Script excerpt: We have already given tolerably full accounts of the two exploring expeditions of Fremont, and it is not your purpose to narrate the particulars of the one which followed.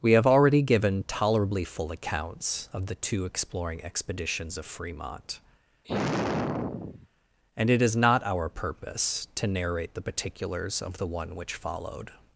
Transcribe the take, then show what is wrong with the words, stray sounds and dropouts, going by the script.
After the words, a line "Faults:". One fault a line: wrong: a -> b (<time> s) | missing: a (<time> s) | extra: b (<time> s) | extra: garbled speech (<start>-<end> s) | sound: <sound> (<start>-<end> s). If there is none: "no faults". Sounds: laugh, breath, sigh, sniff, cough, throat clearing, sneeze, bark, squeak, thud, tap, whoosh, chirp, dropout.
We have already given tolerably full accounts of the two exploring expeditions of Fremont, and it is not our purpose to narrate the particulars of the one which followed.
Faults:
sound: sigh (5.8-7.1 s)
wrong: your -> our (8.3 s)